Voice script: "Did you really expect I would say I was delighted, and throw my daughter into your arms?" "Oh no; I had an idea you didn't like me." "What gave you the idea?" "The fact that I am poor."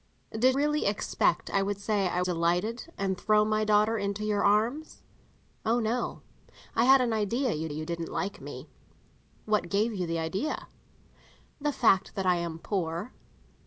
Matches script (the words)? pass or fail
fail